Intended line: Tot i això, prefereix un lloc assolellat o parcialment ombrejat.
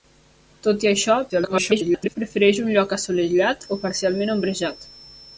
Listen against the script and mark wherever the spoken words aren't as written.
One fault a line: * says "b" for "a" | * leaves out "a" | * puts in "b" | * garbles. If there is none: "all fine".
* garbles